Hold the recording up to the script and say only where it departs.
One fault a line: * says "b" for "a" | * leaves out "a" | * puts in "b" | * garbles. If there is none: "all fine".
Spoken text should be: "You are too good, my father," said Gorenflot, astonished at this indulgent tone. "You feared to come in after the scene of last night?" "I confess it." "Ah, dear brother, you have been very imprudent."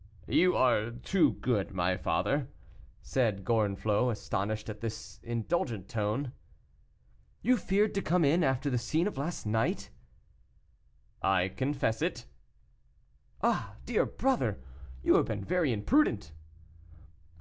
all fine